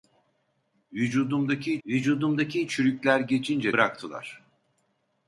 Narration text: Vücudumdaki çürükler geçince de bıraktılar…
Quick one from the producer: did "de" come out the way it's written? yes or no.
no